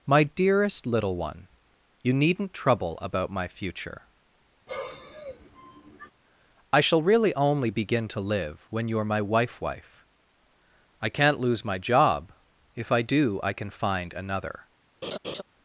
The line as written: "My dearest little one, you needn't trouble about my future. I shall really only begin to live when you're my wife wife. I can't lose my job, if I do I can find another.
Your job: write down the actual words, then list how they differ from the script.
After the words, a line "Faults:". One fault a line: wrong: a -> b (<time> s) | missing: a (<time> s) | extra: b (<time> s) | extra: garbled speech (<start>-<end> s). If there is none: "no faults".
"My dearest little one, you needn't trouble about my future. I shall really only begin to live when you're my wife wife. I can't lose my job, if I do I can find another.
Faults:
no faults